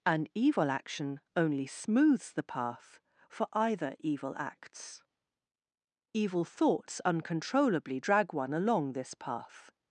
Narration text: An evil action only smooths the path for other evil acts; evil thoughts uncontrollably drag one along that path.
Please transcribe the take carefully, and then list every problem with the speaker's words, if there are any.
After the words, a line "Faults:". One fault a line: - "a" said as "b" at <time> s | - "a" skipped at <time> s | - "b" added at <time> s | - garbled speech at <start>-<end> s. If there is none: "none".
An evil action only smooths the path for either evil acts; evil thoughts uncontrollably drag one along this path.
Faults:
- "other" said as "either" at 3.5 s
- "that" said as "this" at 8.9 s